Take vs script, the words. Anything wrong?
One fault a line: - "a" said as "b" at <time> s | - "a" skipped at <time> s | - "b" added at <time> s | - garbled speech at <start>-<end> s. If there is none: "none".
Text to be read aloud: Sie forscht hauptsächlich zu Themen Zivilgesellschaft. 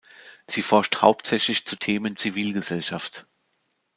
none